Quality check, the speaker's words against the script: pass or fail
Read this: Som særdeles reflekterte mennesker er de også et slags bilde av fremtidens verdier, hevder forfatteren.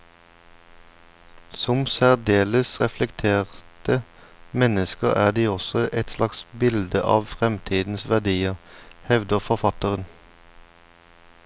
pass